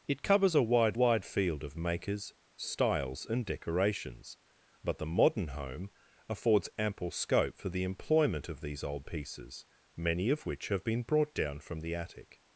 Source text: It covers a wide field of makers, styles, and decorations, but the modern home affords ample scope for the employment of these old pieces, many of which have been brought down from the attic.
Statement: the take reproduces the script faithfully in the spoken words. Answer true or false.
false